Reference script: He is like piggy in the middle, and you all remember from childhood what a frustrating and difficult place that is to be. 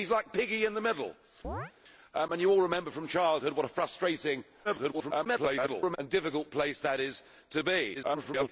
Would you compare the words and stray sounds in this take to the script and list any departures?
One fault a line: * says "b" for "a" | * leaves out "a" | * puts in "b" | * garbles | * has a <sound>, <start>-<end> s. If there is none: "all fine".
* has a chirp, 1.4-1.7 s
* garbles
* garbles